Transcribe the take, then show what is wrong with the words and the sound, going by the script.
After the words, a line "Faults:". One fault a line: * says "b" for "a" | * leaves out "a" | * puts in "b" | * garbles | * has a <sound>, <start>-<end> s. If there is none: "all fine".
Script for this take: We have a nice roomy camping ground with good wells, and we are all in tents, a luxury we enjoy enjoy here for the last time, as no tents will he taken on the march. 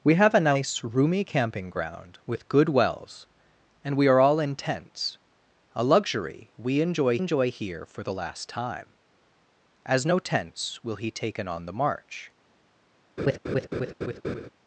We have a nice roomy camping ground with good wells, and we are all in tents, a luxury we enjoy enjoy here for the last time, as no tents will he taken on the march.
Faults:
* has a laugh, 13.2-14.5 s